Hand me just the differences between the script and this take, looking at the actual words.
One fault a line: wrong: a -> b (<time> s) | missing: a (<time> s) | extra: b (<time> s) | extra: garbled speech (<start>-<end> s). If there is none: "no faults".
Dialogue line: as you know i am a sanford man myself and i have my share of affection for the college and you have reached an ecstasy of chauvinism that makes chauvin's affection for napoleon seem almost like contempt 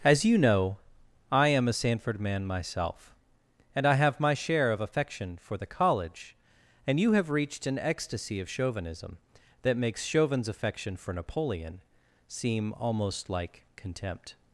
no faults